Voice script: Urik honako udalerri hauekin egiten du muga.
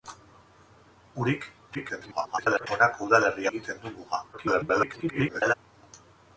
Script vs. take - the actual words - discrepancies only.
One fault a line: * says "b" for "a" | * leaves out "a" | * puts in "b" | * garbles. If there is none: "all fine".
* garbles
* leaves out "hauekin"
* garbles